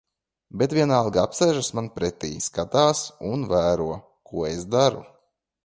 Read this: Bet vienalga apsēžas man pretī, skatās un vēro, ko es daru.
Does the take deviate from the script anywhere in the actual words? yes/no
no